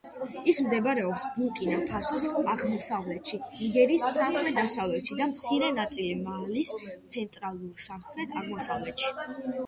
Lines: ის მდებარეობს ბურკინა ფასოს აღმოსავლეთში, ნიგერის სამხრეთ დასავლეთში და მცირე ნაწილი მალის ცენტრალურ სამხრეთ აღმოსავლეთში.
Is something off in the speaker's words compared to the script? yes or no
no